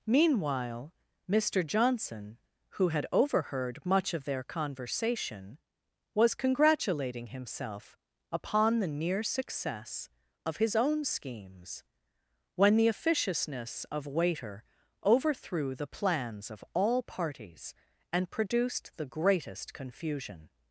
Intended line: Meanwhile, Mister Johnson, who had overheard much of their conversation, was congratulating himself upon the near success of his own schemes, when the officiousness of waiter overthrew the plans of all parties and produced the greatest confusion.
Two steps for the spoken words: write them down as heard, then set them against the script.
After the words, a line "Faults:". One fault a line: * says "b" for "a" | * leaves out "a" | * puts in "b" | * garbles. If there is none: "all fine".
Meanwhile, Mister Johnson, who had overheard much of their conversation, was congratulating himself upon the near success of his own schemes, when the officiousness of waiter overthrew the plans of all parties and produced the greatest confusion.
Faults:
all fine